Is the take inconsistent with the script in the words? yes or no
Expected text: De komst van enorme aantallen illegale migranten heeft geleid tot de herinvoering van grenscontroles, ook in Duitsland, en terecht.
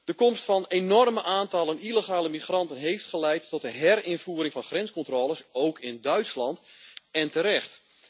no